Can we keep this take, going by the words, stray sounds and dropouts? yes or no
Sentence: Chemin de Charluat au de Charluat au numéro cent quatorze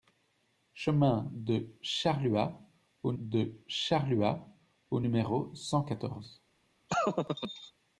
no